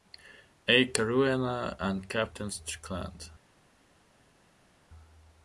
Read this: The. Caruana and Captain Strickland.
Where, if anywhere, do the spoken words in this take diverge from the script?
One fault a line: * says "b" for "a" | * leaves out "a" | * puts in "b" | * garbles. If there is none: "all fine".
* says "A" for "The"